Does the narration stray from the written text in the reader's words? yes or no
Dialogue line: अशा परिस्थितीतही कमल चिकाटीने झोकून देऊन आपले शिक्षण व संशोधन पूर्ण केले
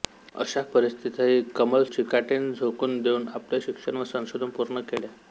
no